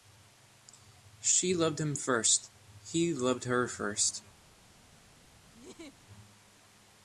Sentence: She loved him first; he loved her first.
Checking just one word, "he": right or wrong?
right